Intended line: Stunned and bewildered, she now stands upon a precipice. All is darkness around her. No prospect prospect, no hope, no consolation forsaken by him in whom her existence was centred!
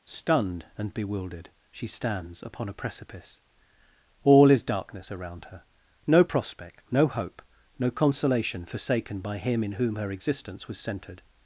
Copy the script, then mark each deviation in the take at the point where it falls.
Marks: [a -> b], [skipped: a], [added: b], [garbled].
Stunned and bewildered, she [skipped: now] stands upon a precipice. All is darkness around her. No prospect [skipped: prospect,] no hope, no consolation forsaken by him in whom her existence was centred!